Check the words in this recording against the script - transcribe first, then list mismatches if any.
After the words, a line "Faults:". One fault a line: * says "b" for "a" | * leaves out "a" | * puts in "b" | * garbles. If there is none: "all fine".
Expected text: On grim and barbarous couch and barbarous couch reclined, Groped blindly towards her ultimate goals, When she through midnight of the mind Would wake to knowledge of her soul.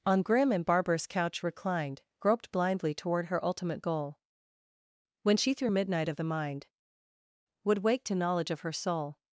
On grim and barbarous couch reclined, Groped blindly toward her ultimate goal, When she through midnight of the mind Would wake to knowledge of her soul.
Faults:
* leaves out "and barbarous couch"
* says "toward" for "towards"
* says "goal" for "goals"